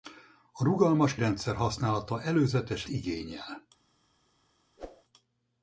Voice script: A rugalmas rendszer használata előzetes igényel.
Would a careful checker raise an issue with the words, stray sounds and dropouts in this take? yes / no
yes